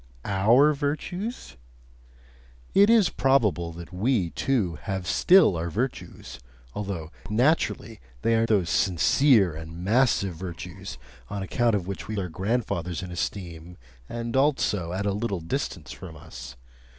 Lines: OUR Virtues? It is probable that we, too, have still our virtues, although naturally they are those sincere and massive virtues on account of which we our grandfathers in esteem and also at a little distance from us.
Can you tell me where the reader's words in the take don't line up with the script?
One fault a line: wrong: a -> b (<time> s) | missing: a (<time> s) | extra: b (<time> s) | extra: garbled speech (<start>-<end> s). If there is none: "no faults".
no faults